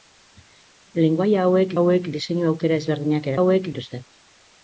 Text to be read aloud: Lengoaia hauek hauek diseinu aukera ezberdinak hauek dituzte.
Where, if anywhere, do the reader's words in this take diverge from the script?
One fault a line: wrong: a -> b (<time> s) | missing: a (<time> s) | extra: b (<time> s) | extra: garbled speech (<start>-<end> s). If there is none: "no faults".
no faults